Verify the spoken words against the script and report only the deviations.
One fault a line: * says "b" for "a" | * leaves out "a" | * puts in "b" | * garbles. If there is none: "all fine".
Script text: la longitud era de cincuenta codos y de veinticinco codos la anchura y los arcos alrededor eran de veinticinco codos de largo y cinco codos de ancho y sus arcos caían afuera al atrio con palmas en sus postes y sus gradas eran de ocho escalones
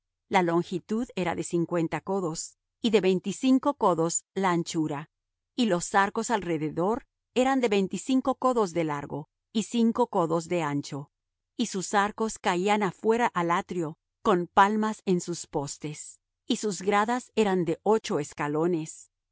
all fine